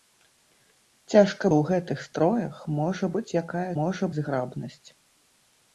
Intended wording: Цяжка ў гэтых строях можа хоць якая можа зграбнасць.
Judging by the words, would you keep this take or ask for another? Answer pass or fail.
pass